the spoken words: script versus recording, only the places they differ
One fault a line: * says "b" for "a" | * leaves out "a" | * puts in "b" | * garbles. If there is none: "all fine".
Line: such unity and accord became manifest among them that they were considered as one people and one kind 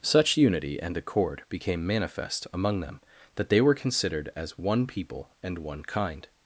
all fine